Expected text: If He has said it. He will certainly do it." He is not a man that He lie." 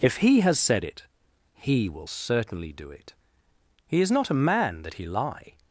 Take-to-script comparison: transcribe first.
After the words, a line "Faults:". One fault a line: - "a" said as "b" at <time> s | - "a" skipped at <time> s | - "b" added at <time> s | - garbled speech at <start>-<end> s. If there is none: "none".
If He has said it. He will certainly do it." He is not a man that He lie."
Faults:
none